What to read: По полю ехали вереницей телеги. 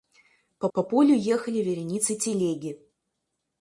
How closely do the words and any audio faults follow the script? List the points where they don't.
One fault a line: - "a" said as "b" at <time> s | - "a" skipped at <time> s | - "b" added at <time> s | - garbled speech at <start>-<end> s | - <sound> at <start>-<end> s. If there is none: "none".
- "по" added at 0.7 s